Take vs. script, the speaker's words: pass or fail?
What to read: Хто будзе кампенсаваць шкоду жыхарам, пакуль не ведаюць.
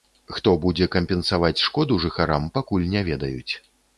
pass